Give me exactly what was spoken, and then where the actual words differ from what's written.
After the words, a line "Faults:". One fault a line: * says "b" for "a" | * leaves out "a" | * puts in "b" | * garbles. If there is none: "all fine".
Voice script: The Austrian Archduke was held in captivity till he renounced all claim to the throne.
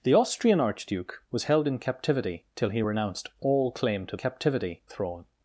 The Austrian Archduke was held in captivity till he renounced all claim to captivity throne.
Faults:
* says "captivity" for "the"